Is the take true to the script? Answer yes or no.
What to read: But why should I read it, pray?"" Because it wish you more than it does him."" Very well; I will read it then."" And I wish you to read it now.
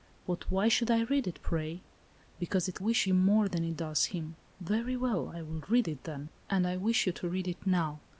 yes